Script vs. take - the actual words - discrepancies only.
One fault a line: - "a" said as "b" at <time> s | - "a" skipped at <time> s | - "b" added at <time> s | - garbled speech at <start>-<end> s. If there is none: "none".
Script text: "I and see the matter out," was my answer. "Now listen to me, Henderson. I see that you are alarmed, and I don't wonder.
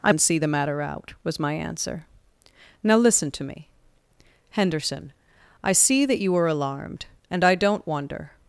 none